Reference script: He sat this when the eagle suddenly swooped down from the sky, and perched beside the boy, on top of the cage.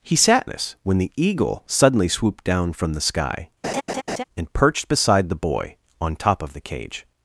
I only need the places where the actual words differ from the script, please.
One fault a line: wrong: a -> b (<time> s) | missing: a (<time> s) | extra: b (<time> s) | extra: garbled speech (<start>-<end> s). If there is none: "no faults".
no faults